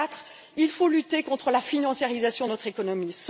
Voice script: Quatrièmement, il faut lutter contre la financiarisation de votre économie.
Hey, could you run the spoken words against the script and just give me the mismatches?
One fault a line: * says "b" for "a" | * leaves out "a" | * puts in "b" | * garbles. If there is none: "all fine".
* says "notre" for "votre"